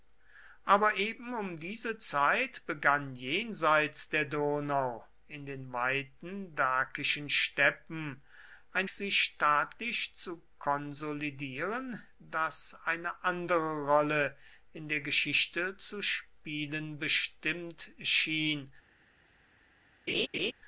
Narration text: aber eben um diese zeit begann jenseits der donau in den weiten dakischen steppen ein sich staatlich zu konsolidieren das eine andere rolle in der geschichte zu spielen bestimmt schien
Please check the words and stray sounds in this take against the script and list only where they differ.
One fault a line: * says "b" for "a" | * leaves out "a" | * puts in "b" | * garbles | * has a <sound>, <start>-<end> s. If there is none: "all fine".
* has a laugh, 20.1-20.5 s